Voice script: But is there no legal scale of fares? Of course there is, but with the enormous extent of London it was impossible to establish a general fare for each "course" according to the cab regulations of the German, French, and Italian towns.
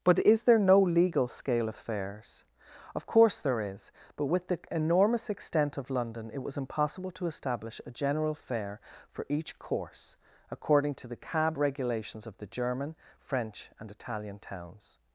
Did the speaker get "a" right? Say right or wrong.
right